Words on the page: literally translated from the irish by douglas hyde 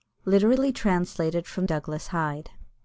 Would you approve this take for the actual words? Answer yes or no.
no